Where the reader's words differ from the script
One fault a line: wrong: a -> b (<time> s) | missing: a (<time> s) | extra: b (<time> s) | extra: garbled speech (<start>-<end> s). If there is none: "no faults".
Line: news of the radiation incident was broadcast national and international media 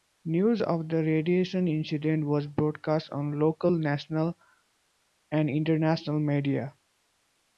extra: on local (3.1 s)